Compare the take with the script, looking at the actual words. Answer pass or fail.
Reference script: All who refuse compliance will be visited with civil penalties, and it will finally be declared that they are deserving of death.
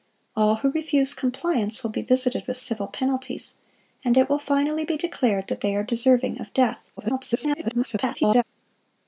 fail